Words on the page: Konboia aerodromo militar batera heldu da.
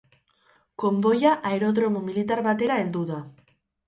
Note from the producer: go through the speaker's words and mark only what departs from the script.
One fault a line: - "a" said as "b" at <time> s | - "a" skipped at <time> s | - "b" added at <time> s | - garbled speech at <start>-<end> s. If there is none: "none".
none